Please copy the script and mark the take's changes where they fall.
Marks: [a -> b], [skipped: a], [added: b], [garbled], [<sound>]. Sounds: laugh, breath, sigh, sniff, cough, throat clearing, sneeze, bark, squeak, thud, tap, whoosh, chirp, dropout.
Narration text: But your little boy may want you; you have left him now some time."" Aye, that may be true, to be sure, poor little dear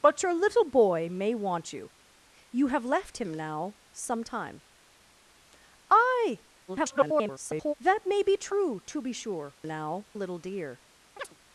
But your little boy may want you; you have left him now some time."" Aye, [garbled] that may be true, to be sure, [poor -> now] little dear [chirp]